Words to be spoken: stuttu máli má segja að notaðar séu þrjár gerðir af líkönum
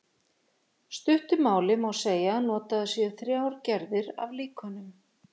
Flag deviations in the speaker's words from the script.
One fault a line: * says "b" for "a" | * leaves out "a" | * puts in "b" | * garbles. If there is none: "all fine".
all fine